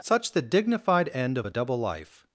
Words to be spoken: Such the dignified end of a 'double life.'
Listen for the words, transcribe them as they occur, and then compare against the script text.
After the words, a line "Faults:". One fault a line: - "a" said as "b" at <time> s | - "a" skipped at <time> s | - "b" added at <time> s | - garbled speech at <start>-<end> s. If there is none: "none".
Such the dignified end of a 'double life.'
Faults:
none